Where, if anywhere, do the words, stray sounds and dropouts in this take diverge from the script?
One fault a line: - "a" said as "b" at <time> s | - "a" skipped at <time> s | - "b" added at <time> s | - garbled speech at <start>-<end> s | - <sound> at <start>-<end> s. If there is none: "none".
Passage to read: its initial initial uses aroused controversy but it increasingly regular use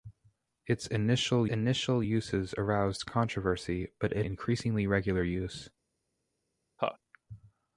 - laugh at 6.8-7.0 s